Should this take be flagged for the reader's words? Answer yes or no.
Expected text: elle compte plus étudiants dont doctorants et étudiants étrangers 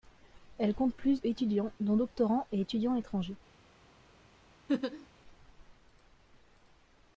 no